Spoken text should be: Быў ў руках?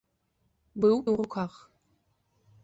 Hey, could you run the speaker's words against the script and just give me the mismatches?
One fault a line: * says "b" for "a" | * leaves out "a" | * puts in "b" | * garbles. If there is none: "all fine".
all fine